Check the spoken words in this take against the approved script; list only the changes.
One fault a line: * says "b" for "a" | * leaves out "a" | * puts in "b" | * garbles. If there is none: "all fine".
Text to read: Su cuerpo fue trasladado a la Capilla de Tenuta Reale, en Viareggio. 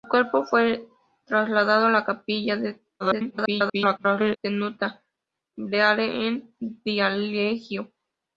* garbles